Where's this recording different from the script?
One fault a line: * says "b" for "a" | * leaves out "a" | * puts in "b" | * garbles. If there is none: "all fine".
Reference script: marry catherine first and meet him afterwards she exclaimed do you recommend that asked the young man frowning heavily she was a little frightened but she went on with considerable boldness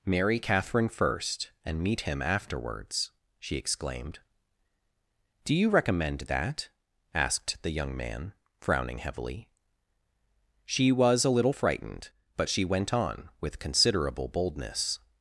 all fine